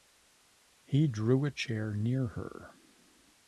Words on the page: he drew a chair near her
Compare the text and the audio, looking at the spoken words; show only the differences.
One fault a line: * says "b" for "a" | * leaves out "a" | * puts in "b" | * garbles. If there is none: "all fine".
all fine